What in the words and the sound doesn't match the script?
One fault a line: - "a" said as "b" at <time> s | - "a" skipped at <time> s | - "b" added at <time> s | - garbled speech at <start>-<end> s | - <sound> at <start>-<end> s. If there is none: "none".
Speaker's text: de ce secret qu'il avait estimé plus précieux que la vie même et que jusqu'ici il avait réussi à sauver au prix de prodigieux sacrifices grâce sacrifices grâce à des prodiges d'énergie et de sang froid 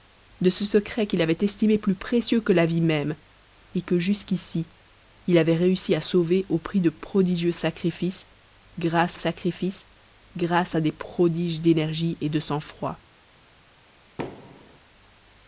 - thud at 14.2-14.8 s